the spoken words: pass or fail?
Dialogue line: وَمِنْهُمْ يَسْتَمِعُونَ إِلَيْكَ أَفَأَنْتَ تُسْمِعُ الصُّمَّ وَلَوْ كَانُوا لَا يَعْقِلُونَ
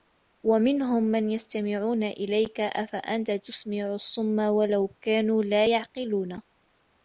fail